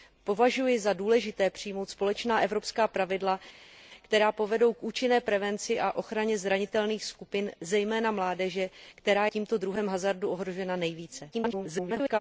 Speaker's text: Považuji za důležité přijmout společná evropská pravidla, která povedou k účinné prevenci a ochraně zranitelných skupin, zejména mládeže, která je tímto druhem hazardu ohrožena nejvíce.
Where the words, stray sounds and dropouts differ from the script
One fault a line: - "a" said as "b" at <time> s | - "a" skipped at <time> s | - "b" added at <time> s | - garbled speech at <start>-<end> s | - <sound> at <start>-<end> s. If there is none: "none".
- "je" skipped at 9.3 s
- garbled speech at 11.3-12.2 s